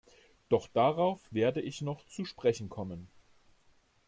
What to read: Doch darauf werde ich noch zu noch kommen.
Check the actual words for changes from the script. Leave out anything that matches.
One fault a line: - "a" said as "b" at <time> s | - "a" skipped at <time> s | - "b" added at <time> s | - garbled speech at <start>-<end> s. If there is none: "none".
- "noch" said as "sprechen" at 2.2 s